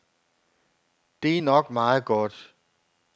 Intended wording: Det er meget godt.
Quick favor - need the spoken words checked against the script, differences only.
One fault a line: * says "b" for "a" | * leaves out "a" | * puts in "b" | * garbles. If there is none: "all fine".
* puts in "nok"